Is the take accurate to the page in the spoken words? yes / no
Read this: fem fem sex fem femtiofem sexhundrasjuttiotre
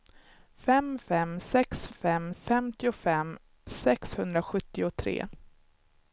yes